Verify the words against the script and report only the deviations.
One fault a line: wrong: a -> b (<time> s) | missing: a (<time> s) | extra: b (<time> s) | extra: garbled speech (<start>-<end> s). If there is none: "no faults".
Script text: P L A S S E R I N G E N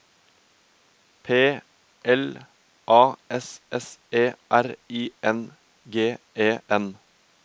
no faults